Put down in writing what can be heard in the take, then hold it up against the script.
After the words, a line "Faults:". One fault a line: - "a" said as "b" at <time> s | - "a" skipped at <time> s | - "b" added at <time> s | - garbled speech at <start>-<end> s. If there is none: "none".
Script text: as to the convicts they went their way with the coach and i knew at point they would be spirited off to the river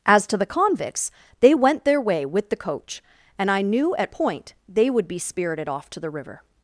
as to the convicts they went their way with the coach and i knew at point they would be spirited off to the river
Faults:
none